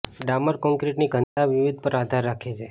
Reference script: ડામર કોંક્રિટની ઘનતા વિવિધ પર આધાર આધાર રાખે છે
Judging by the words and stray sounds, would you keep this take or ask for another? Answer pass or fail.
fail